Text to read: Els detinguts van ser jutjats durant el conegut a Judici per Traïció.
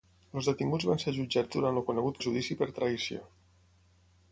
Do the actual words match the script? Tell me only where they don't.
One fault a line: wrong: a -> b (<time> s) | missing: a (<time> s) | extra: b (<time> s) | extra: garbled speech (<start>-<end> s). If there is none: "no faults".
no faults